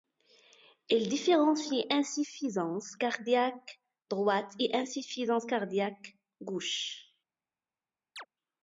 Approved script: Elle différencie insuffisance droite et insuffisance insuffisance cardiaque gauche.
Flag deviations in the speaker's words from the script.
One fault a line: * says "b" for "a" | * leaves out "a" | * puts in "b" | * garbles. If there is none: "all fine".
* says "Il" for "Elle"
* puts in "cardiaque"
* leaves out "insuffisance"